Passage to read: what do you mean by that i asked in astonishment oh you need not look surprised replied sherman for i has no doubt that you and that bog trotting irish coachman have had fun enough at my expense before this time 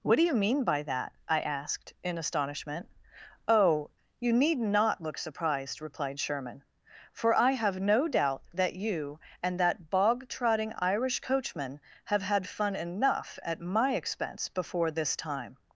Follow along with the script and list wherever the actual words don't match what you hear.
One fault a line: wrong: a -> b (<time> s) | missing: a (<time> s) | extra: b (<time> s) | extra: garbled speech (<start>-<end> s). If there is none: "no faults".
wrong: has -> have (7.5 s)